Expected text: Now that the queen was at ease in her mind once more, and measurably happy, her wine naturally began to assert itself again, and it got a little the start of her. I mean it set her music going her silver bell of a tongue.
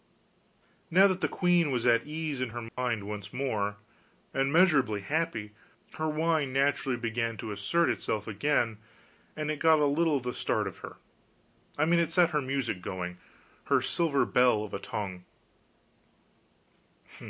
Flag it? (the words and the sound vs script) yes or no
yes